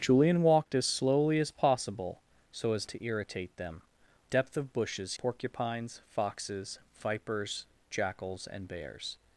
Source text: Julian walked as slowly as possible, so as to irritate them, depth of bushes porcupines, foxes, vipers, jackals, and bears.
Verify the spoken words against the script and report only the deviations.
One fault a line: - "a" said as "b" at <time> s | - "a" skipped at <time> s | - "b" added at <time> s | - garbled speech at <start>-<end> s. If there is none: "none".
none